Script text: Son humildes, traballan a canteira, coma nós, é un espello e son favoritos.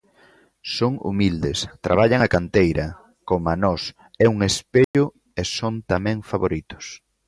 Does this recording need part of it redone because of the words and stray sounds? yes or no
yes